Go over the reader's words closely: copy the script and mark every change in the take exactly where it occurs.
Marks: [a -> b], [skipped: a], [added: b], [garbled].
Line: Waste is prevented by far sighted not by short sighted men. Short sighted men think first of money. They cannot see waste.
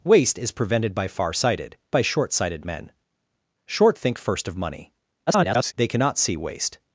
Waste is prevented by far sighted [skipped: not] by short sighted men. Short [skipped: sighted men] think first of money. [garbled] They cannot see waste.